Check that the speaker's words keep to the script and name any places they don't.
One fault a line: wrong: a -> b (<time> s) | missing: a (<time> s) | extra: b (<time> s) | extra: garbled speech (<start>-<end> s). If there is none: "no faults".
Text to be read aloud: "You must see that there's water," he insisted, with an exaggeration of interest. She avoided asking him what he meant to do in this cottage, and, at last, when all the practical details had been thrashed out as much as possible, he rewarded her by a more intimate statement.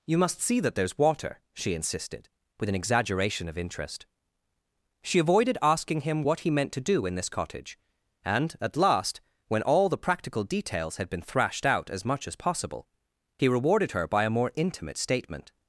wrong: he -> she (1.5 s)